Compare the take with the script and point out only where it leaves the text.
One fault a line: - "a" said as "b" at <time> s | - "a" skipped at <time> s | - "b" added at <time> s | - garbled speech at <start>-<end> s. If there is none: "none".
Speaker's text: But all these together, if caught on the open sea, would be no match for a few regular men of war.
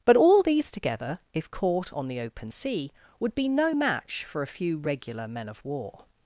none